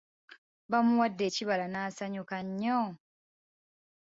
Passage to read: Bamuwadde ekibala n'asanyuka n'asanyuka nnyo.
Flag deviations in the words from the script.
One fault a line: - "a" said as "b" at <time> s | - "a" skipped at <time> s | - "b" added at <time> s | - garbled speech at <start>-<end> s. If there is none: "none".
- "n'asanyuka" skipped at 2.4 s